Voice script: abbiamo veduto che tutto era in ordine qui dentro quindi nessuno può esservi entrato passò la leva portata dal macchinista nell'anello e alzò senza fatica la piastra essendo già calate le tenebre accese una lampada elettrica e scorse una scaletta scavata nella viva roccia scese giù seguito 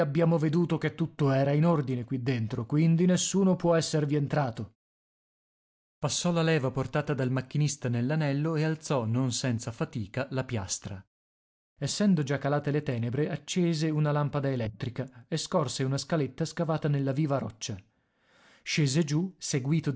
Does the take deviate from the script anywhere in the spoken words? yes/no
yes